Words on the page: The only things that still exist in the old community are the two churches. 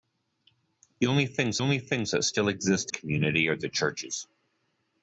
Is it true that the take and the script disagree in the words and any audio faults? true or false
true